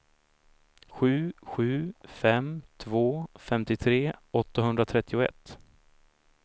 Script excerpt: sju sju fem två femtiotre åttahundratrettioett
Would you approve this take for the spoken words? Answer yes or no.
yes